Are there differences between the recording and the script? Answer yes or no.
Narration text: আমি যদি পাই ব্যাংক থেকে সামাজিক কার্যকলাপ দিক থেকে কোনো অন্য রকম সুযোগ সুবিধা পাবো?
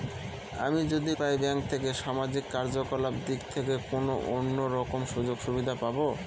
no